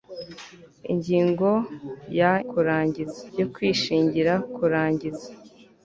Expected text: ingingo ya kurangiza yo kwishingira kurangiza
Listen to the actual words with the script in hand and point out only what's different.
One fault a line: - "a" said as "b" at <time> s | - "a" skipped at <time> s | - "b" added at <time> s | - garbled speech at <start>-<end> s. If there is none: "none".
none